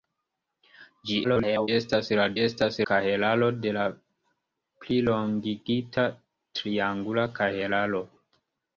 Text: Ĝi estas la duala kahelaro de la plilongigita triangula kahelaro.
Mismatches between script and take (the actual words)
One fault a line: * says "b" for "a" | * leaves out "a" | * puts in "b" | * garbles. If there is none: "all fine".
* garbles
* says "estas" for "duala"